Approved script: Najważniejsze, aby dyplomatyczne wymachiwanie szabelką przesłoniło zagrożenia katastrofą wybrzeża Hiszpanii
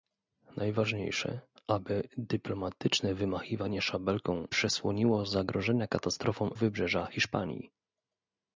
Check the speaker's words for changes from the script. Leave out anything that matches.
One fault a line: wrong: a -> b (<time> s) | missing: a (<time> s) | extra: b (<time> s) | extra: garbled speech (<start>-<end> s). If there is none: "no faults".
no faults